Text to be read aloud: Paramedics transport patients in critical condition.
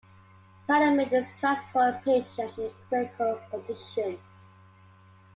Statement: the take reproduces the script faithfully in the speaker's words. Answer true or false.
true